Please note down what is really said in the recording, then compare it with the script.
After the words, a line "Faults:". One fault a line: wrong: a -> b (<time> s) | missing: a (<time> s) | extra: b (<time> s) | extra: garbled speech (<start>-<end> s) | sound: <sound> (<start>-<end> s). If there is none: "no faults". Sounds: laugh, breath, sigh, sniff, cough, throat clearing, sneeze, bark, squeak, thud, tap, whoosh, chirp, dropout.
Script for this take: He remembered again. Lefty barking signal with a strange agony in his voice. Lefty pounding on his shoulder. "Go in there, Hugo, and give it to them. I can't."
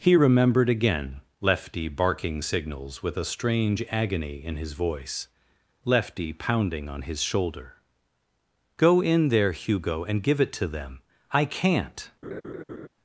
He remembered again. Lefty barking signals with a strange agony in his voice. Lefty pounding on his shoulder. "Go in there, Hugo, and give it to them. I can't."
Faults:
wrong: signal -> signals (2.4 s)
sound: laugh (12.2-12.9 s)